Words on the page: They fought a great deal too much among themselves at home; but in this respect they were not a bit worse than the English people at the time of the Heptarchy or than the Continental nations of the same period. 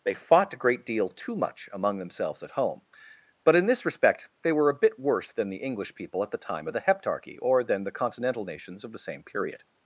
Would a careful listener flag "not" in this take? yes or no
yes